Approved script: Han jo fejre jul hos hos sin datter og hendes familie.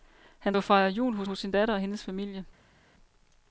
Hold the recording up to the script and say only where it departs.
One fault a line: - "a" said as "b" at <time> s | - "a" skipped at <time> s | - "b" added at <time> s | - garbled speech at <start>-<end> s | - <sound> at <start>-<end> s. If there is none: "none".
none